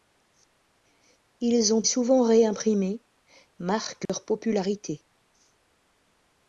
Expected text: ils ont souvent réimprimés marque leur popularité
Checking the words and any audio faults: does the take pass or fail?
fail